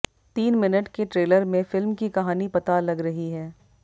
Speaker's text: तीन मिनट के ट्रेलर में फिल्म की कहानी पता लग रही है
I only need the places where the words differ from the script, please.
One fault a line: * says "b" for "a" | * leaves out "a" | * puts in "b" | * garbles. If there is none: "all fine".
all fine